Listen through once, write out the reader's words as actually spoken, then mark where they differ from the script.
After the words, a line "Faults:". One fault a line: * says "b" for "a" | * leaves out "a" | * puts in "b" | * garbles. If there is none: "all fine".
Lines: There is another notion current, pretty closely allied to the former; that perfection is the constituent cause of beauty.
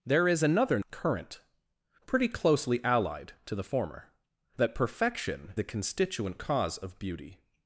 There is another current, pretty closely allied to the former; that perfection the constituent cause of beauty.
Faults:
* leaves out "notion"
* leaves out "is"